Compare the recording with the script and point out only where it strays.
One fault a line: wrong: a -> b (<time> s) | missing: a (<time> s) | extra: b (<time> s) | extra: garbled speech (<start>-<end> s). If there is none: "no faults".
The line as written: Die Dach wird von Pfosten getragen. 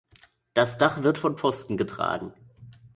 wrong: Die -> Das (0.6 s)